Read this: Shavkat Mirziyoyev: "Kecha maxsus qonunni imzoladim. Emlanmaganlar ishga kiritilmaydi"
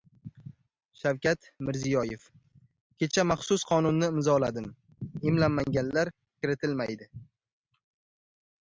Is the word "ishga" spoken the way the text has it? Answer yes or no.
no